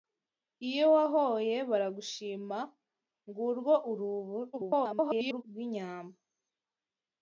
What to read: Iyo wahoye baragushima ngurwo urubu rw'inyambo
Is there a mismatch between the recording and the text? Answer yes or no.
yes